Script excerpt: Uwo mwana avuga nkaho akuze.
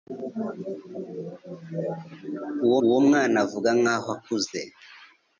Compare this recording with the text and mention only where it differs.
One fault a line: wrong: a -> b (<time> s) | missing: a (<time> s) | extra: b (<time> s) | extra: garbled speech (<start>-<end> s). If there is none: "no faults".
extra: uwo (2.8 s)